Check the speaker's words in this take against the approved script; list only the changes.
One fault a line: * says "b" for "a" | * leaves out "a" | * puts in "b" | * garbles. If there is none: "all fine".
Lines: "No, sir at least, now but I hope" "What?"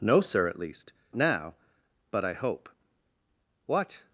all fine